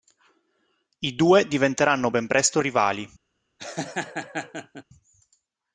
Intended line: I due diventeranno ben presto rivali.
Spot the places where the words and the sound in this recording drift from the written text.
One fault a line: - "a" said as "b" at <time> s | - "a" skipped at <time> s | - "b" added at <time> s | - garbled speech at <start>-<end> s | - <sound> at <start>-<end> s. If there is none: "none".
- laugh at 3.6-4.8 s